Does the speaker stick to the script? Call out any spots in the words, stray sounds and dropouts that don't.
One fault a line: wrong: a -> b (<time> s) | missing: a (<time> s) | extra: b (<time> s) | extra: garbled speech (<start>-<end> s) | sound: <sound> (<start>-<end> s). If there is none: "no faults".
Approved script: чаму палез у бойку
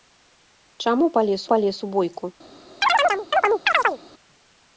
extra: палез (1.5 s)
sound: chirp (2.8-4.0 s)